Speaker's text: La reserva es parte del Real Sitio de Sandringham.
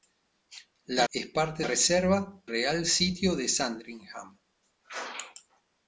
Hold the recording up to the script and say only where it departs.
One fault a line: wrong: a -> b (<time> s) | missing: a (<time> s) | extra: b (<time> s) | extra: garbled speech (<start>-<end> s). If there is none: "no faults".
missing: reserva (1.1 s)
wrong: del -> reserva (1.6 s)